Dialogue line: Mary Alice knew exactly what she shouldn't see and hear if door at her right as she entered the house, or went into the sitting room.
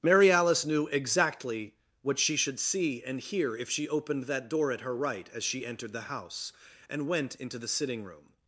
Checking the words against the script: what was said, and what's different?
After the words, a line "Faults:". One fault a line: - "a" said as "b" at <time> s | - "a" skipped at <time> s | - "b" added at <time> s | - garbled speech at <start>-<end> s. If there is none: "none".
Mary Alice knew exactly what she should see and hear if she opened that door at her right as she entered the house, and went into the sitting room.
Faults:
- "shouldn't" said as "should" at 2.4 s
- "she opened that" added at 3.7 s
- "or" said as "and" at 6.9 s